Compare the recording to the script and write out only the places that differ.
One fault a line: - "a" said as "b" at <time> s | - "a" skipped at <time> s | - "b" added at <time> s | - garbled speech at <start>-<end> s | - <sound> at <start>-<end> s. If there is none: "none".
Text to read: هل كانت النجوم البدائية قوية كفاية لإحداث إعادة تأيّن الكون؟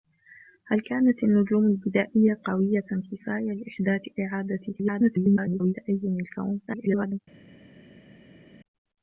- garbled speech at 4.7-5.7 s
- garbled speech at 6.7-7.2 s